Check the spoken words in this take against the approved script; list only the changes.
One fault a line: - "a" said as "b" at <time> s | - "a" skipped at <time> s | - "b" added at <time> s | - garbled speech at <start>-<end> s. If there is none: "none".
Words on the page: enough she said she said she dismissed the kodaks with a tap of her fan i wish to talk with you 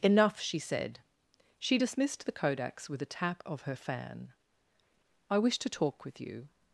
- "said she" skipped at 1.8 s